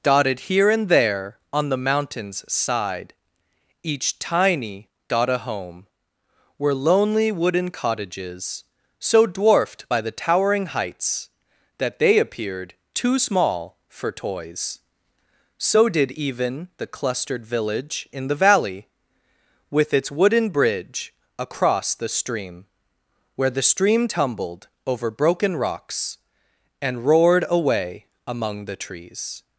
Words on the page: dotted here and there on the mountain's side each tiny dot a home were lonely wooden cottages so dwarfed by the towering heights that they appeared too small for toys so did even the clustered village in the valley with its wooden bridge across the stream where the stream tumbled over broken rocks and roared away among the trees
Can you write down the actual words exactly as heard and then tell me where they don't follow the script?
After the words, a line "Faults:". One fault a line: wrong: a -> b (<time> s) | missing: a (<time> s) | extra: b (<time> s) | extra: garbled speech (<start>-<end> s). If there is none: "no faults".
dotted here and there on the mountain's side each tiny dot a home were lonely wooden cottages so dwarfed by the towering heights that they appeared too small for toys so did even the clustered village in the valley with its wooden bridge across the stream where the stream tumbled over broken rocks and roared away among the trees
Faults:
no faults